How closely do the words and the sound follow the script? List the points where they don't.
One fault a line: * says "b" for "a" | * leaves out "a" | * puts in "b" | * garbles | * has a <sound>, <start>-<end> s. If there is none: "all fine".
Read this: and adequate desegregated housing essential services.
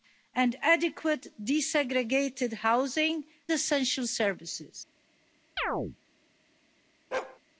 * has a chirp, 5.6-6.0 s
* has a bark, 7.1-7.4 s